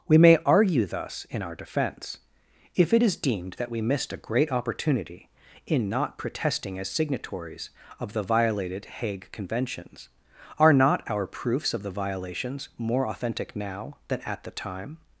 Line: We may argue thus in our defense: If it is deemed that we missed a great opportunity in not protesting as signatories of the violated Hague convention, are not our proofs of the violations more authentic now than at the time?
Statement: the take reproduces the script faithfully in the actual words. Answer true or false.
false